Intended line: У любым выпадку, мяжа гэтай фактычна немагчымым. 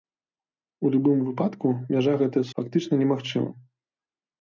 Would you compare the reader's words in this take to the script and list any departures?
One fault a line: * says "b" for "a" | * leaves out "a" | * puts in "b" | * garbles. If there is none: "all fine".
all fine